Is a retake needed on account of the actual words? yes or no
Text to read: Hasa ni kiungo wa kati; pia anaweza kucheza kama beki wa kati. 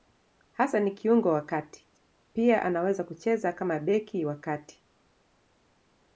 no